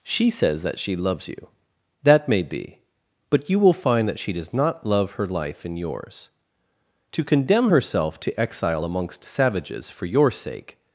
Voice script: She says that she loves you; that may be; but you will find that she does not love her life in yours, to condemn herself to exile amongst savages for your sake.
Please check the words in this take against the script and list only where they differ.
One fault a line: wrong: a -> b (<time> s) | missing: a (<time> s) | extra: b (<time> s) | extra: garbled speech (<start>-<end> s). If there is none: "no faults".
no faults